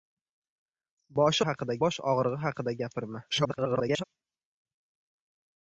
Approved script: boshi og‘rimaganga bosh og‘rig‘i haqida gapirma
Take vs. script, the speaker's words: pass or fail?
fail